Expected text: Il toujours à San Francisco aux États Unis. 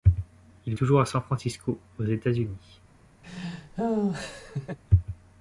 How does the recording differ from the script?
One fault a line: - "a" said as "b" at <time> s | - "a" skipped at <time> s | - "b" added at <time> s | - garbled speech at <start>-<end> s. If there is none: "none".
none